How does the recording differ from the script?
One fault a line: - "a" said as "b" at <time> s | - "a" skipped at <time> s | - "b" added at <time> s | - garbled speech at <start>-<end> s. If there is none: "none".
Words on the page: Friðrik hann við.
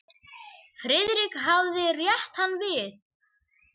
- "hafði rétt" added at 1.5 s